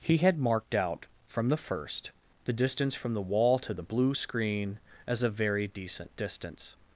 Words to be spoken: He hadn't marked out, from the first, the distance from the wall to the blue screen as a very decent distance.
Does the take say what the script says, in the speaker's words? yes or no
no